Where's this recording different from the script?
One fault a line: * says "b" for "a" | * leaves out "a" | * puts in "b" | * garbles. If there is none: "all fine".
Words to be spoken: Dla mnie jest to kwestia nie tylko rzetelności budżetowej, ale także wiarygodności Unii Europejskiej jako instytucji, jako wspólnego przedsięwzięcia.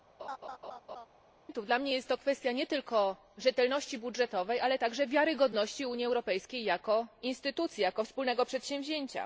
all fine